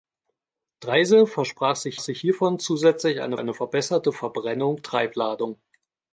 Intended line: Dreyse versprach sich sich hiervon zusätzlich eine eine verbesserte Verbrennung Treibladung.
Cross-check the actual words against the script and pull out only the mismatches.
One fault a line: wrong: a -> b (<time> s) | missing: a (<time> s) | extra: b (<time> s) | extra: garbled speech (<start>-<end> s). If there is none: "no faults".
no faults